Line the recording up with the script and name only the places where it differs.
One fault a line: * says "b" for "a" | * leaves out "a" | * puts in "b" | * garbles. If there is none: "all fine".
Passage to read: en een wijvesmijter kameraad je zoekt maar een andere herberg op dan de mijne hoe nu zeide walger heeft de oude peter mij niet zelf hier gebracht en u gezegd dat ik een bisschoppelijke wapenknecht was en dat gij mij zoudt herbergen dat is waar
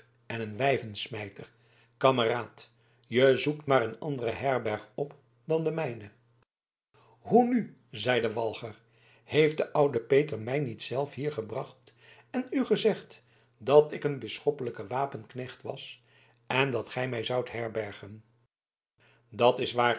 all fine